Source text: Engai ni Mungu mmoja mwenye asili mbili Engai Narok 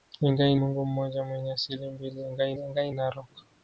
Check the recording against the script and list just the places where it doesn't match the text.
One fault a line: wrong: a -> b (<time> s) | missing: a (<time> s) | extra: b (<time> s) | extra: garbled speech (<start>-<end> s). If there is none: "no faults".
missing: ni (0.6 s)
extra: Engai (2.6 s)